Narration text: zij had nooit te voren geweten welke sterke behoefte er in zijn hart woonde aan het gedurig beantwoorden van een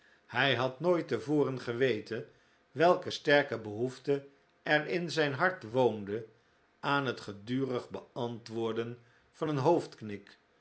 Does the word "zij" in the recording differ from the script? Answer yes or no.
yes